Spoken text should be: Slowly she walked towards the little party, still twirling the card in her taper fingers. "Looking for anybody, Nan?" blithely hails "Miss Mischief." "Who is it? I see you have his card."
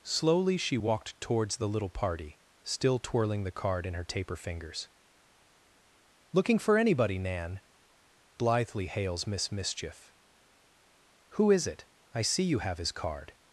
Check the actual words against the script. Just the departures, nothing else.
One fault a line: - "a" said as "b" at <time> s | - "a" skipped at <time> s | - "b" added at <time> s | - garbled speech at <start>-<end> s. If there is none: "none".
none